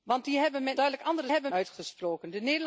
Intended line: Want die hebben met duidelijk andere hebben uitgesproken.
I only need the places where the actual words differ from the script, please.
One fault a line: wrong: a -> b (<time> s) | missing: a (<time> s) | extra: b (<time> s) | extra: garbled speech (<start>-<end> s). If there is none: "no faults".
no faults